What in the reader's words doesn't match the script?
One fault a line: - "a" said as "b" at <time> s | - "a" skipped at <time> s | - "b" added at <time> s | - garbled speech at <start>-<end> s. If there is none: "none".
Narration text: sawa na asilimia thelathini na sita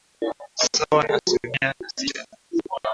- "thelathini" skipped at 1.7 s